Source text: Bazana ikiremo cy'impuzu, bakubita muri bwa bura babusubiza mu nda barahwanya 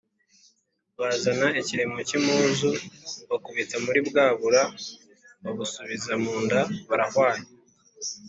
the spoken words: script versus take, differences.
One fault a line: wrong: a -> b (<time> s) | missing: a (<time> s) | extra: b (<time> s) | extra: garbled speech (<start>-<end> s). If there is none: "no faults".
no faults